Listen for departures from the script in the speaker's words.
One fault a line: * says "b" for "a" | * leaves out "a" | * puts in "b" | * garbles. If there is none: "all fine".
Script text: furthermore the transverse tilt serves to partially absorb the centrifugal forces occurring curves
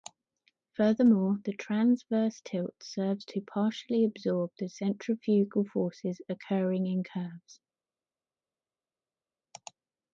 * puts in "in"